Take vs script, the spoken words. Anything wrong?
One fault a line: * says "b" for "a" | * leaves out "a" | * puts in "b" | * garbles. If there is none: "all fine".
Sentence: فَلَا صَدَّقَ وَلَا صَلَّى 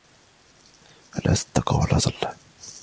all fine